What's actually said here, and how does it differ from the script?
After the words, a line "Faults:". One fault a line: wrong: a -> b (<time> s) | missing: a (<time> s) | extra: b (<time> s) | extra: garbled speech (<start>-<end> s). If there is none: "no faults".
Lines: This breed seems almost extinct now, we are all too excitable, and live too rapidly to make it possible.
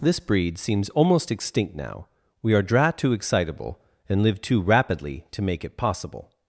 This breed seems almost extinct now, we are dra too excitable, and live too rapidly to make it possible.
Faults:
wrong: all -> dra (2.6 s)